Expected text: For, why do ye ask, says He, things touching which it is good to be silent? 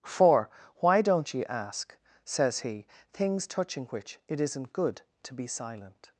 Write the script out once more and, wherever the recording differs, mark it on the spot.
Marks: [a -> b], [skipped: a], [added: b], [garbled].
For, why [do -> don't] ye ask, says He, things touching which it [is -> isn't] good to be silent?